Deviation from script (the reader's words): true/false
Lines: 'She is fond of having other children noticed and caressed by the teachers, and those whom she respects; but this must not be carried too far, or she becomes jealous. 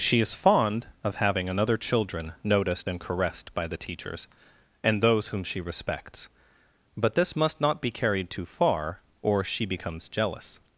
true